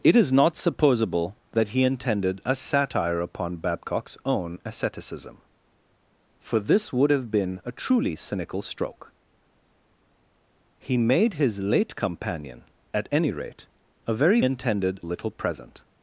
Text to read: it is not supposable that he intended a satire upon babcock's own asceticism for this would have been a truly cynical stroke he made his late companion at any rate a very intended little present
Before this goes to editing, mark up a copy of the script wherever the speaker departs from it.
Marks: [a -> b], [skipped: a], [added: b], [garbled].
it is not supposable that he intended a satire upon babcock's own asceticism for this would have been a truly cynical stroke he made his late companion at any rate a very intended little present